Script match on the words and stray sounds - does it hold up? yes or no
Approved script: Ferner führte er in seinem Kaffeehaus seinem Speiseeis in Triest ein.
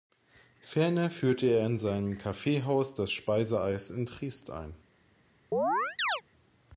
no